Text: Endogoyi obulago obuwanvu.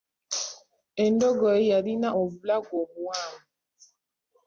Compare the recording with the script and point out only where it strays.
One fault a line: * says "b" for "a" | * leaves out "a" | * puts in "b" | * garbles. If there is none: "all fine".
* puts in "yalina"